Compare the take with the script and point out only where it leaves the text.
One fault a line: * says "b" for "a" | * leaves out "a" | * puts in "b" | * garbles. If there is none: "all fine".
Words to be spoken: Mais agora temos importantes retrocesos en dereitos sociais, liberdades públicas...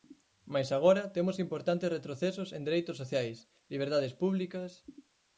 all fine